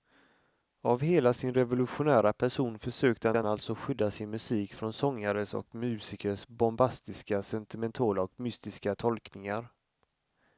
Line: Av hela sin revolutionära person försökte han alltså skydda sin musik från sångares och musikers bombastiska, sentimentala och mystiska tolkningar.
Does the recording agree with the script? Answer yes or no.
no